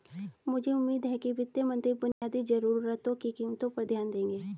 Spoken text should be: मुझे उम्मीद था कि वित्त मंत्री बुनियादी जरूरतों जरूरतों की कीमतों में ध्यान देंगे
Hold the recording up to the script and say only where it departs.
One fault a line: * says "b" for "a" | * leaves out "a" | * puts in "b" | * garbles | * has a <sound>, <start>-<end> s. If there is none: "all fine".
* says "है" for "था"
* has a dropout, 2.1-2.2 s
* leaves out "जरूरतों"
* says "पर" for "में"